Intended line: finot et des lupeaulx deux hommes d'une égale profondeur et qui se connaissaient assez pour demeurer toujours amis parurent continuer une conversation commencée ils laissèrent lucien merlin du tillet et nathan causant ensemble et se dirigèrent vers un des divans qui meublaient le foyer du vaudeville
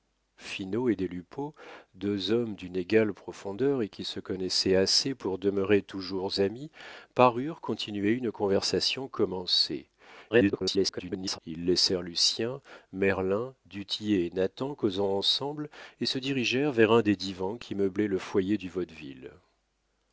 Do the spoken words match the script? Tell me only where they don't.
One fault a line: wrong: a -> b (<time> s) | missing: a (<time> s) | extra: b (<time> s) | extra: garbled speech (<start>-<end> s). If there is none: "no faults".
extra: garbled speech (10.3-11.4 s)